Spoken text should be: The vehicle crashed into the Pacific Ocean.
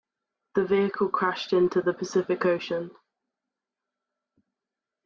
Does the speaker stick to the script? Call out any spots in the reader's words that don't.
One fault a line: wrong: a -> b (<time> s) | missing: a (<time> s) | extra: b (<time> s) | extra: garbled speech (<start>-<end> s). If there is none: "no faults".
no faults